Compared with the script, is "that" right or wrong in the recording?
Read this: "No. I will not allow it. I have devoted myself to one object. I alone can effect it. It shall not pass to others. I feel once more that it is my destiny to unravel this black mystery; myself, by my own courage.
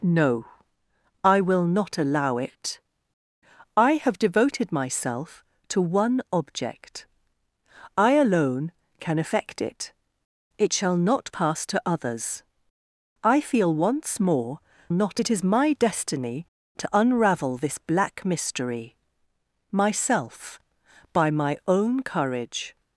wrong